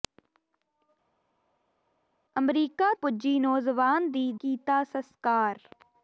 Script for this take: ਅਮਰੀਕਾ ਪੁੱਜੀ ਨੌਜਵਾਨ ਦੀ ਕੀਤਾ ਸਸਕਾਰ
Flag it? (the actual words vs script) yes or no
no